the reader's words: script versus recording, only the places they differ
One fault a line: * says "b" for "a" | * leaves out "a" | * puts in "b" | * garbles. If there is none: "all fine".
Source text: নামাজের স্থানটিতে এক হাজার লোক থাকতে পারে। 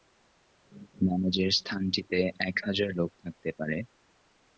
all fine